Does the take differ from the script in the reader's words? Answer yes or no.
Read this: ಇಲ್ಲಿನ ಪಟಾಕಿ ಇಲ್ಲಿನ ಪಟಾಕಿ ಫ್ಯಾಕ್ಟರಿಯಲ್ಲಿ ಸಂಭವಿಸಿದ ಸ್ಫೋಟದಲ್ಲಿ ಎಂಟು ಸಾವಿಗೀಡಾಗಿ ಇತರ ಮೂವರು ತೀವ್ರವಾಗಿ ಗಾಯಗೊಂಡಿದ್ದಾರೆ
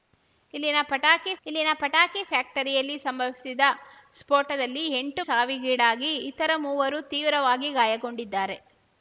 no